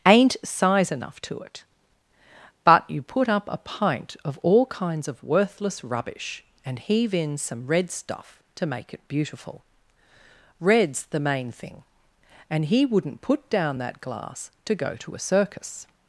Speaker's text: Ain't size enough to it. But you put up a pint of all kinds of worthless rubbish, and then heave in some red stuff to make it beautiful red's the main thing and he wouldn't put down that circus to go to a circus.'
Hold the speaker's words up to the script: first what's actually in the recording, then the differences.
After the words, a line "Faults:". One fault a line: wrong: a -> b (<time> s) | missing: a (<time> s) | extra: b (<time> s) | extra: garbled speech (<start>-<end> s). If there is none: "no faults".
Ain't size enough to it. But you put up a pint of all kinds of worthless rubbish, and heave in some red stuff to make it beautiful red's the main thing and he wouldn't put down that glass to go to a circus.'
Faults:
missing: then (6.8 s)
wrong: circus -> glass (14.0 s)